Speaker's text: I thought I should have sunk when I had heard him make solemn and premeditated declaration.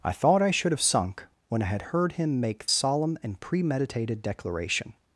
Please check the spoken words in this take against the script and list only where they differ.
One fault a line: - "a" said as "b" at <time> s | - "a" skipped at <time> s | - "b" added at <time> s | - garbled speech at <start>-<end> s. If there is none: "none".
none